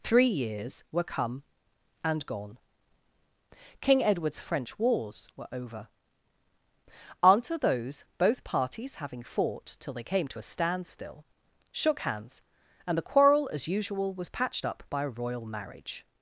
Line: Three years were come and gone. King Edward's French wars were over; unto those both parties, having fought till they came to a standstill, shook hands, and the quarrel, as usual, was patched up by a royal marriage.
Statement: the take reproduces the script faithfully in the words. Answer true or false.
true